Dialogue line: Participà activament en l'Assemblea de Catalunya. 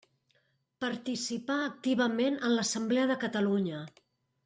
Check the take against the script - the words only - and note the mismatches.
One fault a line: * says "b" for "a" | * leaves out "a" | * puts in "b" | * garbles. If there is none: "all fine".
all fine